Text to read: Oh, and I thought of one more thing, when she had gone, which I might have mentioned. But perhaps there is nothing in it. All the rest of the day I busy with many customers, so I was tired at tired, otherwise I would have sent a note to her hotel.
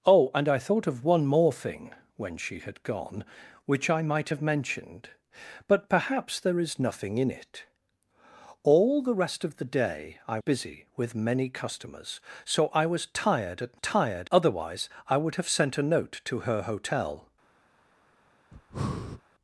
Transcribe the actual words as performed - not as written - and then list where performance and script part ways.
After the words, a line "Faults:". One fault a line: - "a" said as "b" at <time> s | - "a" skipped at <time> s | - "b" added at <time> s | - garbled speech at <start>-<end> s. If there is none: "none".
Oh, and I thought of one more thing, when she had gone, which I might have mentioned. But perhaps there is nothing in it. All the rest of the day I busy with many customers, so I was tired at tired, otherwise I would have sent a note to her hotel.
Faults:
none